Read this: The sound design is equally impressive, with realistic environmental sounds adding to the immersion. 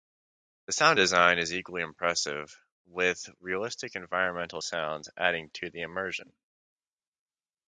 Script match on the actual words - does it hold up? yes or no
yes